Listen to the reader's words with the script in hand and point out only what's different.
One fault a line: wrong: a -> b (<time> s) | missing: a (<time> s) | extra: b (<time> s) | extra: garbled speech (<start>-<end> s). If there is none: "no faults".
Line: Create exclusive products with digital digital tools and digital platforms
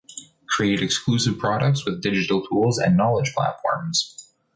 missing: digital (2.4 s)
wrong: digital -> knowledge (3.0 s)